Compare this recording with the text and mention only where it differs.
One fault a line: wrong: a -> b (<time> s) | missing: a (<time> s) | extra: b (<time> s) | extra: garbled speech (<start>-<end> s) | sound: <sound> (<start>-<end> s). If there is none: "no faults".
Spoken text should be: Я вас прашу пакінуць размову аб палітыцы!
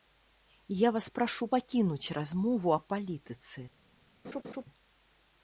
sound: laugh (4.2-4.6 s)